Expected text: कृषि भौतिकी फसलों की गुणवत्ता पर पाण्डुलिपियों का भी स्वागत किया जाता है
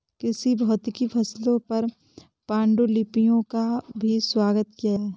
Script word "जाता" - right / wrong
wrong